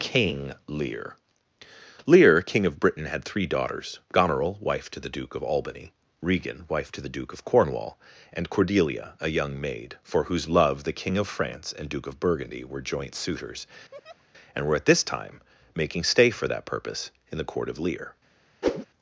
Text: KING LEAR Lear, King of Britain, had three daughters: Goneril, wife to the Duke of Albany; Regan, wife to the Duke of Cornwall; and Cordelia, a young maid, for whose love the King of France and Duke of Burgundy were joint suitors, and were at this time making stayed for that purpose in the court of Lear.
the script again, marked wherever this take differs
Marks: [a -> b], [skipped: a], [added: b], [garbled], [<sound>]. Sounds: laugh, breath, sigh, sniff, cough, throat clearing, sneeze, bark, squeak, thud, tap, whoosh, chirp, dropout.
KING LEAR Lear, King of Britain, had three daughters: Goneril, wife to the Duke of Albany; Regan, wife to the Duke of Cornwall; and Cordelia, a young maid, for whose love the King of France and Duke of Burgundy were joint suitors, [laugh] and were at this time making [stayed -> stay] for that purpose in the court of Lear. [whoosh]